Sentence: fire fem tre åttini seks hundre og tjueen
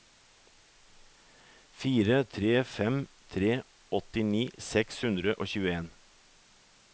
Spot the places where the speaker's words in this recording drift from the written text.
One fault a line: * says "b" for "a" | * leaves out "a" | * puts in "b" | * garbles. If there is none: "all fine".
* puts in "tre"